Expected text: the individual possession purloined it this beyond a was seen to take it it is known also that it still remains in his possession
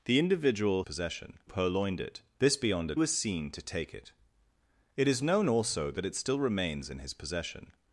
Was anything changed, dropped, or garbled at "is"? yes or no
no